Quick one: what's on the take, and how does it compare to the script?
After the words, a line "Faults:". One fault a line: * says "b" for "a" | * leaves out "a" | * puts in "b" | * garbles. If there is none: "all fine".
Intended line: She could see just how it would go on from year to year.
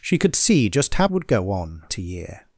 She could see just how would go on to year.
Faults:
* leaves out "it"
* leaves out "from year"